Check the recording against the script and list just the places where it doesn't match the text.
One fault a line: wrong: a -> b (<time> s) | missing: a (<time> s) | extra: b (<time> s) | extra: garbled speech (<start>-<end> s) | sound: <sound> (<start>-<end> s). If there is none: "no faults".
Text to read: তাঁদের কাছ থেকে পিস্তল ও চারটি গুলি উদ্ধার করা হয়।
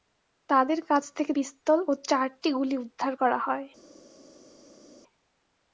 no faults